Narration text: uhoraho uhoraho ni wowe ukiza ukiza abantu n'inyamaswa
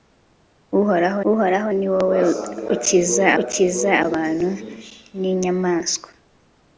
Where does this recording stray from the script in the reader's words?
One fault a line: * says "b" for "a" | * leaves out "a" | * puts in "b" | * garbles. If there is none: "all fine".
all fine